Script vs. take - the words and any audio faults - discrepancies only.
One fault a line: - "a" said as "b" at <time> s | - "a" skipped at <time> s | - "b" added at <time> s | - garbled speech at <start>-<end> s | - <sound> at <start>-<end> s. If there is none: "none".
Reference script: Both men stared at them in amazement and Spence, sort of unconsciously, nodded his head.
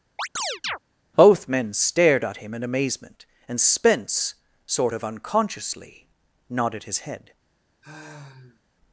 - chirp at 0.2-0.8 s
- "them" said as "him" at 2.4 s
- sigh at 7.8-8.6 s